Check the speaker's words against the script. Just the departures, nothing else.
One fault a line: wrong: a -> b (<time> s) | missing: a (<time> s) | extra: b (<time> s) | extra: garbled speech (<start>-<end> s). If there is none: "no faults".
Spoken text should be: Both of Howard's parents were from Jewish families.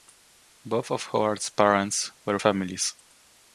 missing: from Jewish (2.4 s)